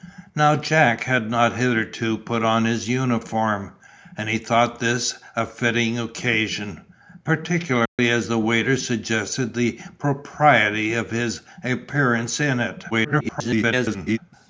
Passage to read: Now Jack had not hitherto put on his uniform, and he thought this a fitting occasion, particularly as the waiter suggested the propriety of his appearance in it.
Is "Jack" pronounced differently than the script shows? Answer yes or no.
no